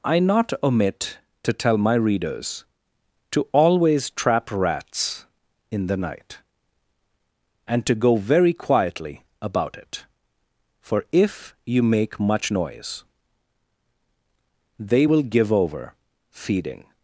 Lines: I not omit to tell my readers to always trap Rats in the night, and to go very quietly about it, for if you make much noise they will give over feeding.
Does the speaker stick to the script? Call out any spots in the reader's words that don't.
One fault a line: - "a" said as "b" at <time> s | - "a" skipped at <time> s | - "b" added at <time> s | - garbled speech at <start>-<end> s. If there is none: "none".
none